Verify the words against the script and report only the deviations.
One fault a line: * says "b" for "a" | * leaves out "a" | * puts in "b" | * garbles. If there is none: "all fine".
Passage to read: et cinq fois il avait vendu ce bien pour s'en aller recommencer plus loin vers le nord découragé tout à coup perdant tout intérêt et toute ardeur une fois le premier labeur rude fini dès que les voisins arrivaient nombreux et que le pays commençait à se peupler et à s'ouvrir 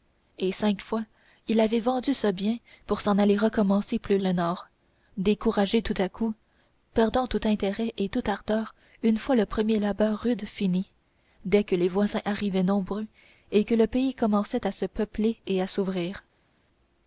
* leaves out "loin vers"